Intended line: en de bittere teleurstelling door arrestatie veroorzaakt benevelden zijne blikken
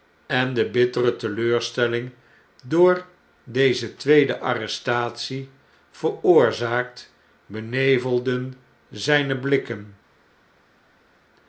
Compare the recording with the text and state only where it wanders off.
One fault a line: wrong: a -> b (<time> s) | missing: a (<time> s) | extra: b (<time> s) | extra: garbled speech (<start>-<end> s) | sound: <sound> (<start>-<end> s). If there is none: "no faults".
extra: deze tweede (3.4 s)